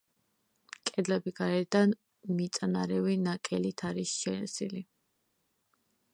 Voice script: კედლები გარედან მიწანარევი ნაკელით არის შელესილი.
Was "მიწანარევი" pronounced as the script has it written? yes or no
yes